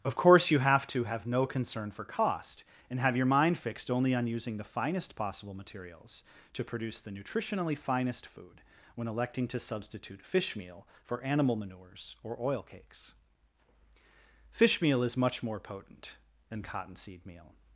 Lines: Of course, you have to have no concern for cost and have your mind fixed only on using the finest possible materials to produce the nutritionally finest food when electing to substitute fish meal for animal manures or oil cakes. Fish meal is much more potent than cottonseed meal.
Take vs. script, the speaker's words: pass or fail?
pass